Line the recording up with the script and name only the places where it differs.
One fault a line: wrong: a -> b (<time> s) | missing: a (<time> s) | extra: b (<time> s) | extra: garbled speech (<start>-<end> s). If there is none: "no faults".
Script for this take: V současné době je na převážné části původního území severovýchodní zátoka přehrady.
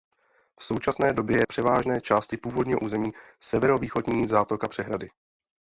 missing: na (1.4 s)